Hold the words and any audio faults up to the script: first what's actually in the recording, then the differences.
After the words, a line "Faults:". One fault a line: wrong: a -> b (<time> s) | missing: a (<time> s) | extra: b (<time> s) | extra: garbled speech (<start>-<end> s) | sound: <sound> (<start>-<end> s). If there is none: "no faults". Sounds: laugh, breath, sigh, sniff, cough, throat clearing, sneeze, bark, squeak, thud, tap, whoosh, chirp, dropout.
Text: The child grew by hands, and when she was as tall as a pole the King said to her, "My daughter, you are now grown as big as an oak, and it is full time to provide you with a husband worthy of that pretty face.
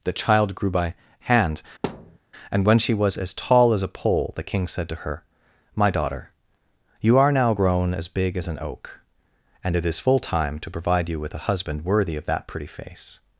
The child grew by hand, and when she was as tall as a pole the King said to her, "My daughter, you are now grown as big as an oak, and it is full time to provide you with a husband worthy of that pretty face.
Faults:
wrong: hands -> hand (1.2 s)
sound: thud (1.8-2.2 s)